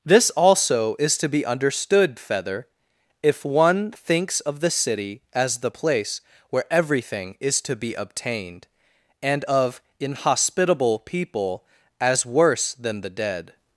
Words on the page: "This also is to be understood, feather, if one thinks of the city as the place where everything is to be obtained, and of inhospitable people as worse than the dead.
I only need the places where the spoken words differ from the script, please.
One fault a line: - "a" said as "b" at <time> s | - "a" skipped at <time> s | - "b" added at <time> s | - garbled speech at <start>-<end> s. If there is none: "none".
none